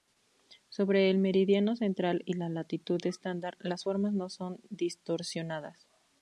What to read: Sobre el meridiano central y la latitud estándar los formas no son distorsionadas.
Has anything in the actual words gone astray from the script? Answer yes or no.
yes